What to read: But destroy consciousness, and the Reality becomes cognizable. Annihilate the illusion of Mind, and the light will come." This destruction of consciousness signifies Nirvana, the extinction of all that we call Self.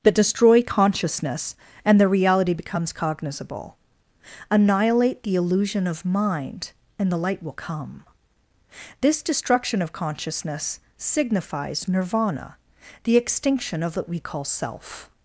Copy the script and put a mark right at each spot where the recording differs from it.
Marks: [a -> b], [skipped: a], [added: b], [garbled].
But destroy consciousness, and the Reality becomes cognizable. Annihilate the illusion of Mind, and the light will come." This destruction of consciousness signifies Nirvana, the extinction of [skipped: all] that we call Self.